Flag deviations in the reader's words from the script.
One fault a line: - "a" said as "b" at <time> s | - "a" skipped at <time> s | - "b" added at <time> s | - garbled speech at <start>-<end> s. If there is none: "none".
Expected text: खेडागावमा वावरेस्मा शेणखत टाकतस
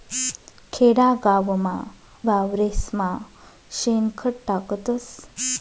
none